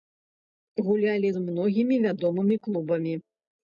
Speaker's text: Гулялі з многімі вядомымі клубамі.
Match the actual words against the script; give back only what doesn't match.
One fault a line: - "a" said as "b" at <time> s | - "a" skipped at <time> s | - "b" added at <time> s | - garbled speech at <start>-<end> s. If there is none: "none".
none